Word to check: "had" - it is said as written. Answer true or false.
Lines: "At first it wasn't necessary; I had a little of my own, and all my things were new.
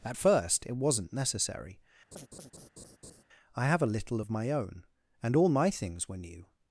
false